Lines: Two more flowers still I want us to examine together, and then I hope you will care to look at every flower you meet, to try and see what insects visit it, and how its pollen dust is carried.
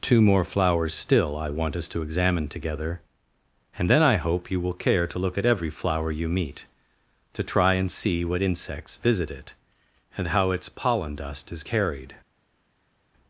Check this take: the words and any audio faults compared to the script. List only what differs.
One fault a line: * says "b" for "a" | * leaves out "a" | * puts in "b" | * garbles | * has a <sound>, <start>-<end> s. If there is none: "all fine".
all fine